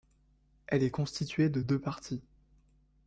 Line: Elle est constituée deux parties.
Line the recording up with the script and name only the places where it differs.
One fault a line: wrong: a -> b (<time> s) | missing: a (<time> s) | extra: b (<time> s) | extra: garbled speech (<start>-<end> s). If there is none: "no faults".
extra: de (1.5 s)